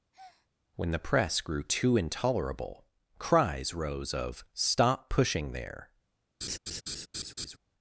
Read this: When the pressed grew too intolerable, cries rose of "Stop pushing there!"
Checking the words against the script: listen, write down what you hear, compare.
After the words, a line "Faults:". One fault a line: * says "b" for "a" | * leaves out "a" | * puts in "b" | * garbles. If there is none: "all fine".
When the press grew too intolerable, cries rose of "Stop pushing there!"
Faults:
* says "press" for "pressed"